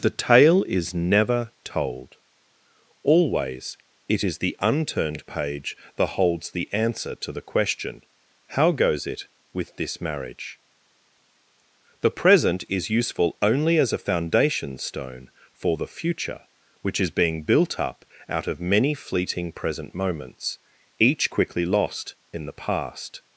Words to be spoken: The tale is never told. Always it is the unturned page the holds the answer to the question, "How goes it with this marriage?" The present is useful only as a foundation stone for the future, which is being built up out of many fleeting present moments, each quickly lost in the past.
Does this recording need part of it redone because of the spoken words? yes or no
yes